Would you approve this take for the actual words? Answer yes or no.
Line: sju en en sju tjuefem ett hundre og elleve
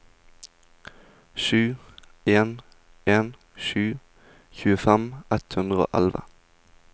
yes